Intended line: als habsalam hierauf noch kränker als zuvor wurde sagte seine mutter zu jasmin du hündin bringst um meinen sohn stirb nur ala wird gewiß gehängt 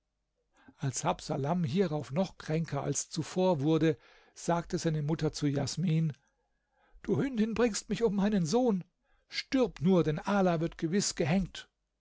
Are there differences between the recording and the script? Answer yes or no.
yes